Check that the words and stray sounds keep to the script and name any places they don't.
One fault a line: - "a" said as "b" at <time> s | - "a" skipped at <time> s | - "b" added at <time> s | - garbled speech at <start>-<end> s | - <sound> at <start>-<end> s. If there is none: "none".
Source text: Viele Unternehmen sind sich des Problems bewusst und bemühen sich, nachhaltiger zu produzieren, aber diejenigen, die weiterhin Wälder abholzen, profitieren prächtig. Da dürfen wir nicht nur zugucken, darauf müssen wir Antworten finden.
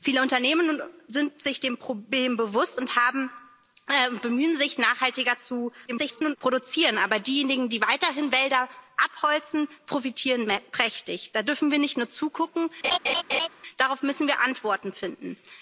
- garbled speech at 5.9-6.4 s
- laugh at 12.8-13.5 s